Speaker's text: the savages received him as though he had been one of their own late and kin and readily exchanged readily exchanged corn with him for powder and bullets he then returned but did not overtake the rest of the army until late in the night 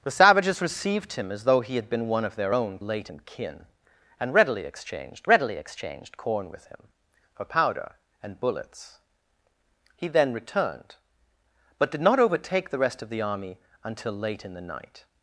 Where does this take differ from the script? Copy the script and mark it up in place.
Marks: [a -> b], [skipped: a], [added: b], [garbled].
the savages received him as though he had been one of their own late and kin and readily exchanged readily exchanged corn with him for powder and bullets he then returned but did not overtake the rest of the army until late in the night